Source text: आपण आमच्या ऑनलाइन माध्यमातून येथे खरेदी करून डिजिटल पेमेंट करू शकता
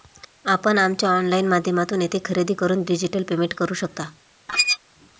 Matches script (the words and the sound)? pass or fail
fail